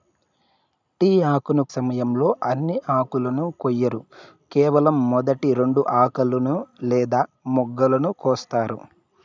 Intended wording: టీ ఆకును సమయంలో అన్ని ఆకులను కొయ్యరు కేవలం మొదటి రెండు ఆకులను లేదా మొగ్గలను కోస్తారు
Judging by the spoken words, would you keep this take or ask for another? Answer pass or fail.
pass